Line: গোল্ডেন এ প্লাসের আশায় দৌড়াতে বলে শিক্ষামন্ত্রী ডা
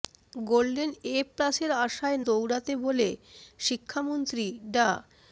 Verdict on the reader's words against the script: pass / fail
pass